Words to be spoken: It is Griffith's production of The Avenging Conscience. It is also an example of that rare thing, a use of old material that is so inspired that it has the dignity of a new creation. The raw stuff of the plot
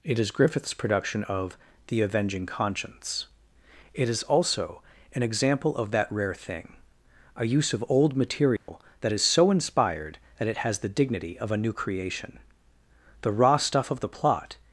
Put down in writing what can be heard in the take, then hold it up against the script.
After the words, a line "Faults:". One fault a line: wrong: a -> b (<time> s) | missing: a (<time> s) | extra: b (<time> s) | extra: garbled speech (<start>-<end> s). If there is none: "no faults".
It is Griffith's production of The Avenging Conscience. It is also an example of that rare thing, a use of old material that is so inspired that it has the dignity of a new creation. The raw stuff of the plot
Faults:
no faults